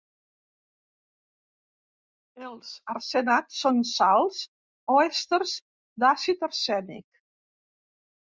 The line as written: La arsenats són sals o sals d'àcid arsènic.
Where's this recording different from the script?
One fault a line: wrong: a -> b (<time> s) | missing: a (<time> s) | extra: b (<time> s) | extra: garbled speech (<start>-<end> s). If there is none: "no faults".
wrong: La -> Els (2.5 s)
wrong: sals -> èsters (5.0 s)